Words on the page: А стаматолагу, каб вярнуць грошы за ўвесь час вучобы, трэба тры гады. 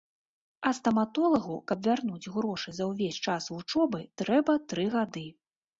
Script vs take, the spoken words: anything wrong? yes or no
no